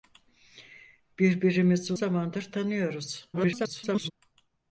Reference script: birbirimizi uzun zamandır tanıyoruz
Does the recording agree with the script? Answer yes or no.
no